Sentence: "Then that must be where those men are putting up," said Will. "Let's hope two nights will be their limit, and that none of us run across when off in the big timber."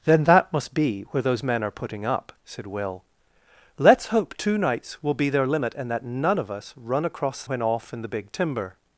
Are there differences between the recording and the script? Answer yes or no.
no